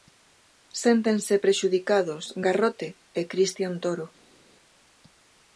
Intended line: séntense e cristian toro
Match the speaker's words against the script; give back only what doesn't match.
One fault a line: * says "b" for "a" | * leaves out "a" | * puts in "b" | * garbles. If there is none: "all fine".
* puts in "prexudicados garrote"